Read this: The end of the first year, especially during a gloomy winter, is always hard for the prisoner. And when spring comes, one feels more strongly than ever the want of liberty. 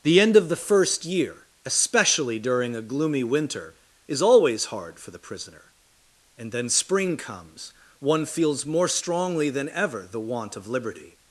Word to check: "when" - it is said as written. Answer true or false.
false